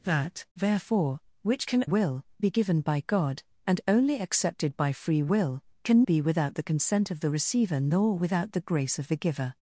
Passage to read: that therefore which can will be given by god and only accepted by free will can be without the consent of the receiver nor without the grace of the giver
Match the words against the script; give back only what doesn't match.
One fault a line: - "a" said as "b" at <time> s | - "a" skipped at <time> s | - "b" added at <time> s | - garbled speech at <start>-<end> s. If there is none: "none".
none